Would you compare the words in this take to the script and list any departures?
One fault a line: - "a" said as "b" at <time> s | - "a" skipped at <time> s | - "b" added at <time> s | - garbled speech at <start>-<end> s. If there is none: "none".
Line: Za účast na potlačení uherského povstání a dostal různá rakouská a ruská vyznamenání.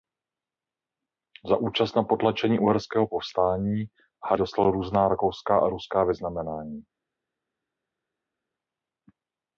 none